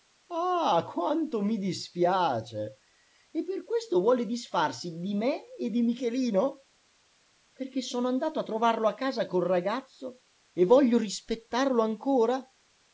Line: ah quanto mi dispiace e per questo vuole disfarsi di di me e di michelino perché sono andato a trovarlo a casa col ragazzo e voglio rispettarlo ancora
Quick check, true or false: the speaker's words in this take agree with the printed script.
false